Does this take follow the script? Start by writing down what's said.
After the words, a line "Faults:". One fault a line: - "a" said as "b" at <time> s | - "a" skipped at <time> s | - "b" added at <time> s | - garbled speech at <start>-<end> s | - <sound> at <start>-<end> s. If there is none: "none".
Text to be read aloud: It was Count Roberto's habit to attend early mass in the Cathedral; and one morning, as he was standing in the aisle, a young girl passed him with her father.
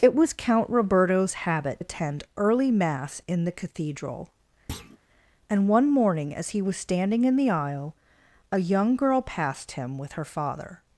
It was Count Roberto's habit attend early mass in the Cathedral; and one morning, as he was standing in the aisle, a young girl passed him with her father.
Faults:
- "to" skipped at 1.8 s
- thud at 4.7-5.0 s